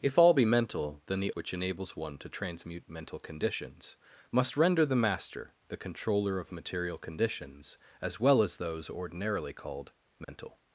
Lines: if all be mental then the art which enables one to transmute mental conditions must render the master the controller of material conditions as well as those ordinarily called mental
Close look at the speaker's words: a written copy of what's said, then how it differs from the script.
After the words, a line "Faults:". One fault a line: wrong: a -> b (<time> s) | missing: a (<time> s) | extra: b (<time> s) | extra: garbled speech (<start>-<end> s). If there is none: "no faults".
if all be mental then the which enables one to transmute mental conditions must render the master the controller of material conditions as well as those ordinarily called mental
Faults:
missing: art (1.3 s)